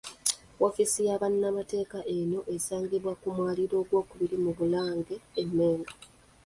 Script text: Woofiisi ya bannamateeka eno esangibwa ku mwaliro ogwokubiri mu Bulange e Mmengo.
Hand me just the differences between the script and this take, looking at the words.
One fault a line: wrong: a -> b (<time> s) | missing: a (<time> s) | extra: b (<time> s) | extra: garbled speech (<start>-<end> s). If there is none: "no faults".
no faults